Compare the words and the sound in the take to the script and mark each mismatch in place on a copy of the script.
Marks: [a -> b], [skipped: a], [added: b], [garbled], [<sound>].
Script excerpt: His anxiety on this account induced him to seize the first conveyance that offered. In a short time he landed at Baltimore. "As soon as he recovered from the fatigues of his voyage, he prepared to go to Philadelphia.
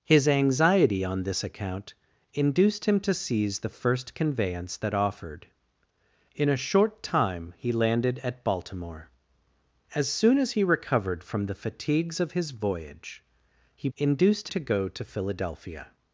His anxiety on this account induced him to seize the first conveyance that offered. In a short time he landed at Baltimore. "As soon as he recovered from the fatigues of his voyage, he [prepared -> induced] to go to Philadelphia.